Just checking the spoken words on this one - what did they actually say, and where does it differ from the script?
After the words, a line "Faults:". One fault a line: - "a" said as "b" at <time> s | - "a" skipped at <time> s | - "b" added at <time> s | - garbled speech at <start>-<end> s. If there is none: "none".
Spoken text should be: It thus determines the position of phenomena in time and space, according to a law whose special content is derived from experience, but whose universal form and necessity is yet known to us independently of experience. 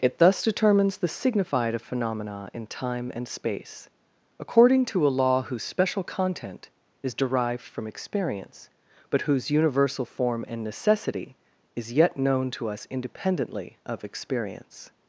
It thus determines the signified of phenomena in time and space, according to a law whose special content is derived from experience, but whose universal form and necessity is yet known to us independently of experience.
Faults:
- "position" said as "signified" at 1.1 s